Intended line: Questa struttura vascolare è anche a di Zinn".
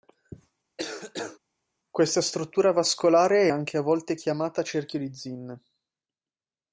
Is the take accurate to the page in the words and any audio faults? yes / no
no